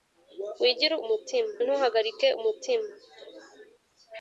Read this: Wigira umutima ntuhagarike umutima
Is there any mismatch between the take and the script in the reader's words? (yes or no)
no